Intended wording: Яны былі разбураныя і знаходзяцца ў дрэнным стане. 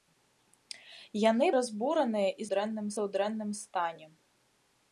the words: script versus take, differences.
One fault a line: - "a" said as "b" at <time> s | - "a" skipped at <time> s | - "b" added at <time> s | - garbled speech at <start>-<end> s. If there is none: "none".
- "былі" skipped at 1.5 s
- "знаходзяцца" said as "дрэнным" at 2.5 s